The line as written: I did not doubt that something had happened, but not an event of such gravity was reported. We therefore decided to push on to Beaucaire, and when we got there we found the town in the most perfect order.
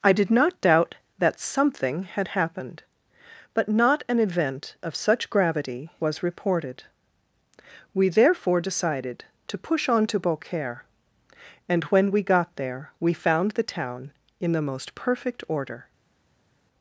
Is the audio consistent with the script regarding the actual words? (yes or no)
yes